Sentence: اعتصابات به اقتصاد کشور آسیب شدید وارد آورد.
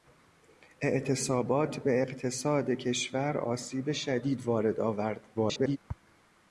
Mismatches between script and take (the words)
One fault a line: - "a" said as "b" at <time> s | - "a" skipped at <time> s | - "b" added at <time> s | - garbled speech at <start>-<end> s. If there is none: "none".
- garbled speech at 5.3-5.8 s